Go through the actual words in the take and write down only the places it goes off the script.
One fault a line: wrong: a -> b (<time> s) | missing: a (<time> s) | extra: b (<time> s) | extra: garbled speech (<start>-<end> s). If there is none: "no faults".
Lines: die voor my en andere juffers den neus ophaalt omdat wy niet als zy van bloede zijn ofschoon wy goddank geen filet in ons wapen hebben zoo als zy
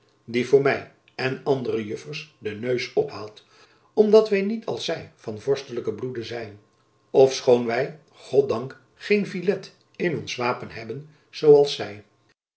extra: vorstelijken (5.4 s)